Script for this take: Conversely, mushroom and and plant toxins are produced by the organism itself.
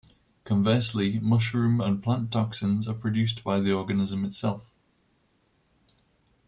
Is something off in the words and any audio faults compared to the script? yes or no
yes